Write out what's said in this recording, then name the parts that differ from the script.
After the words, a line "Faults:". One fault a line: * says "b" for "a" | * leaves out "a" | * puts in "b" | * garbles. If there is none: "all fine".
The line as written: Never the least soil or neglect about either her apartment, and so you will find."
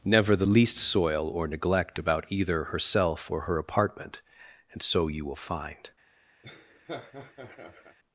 Never the least soil or neglect about either herself or her apartment, and so you will find."
Faults:
* puts in "herself or"